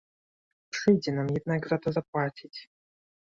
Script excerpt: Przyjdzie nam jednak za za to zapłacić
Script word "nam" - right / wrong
right